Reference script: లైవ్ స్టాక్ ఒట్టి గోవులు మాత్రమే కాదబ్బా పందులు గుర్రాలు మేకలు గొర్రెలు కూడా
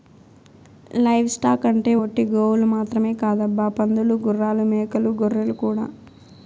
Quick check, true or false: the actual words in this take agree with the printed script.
false